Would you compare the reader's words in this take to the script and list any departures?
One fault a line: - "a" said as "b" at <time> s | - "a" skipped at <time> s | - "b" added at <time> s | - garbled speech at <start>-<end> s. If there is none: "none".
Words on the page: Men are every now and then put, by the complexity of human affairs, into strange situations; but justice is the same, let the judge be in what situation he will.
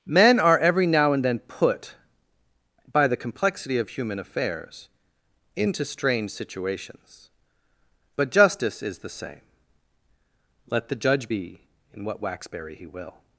- "situation" said as "waxberry" at 12.2 s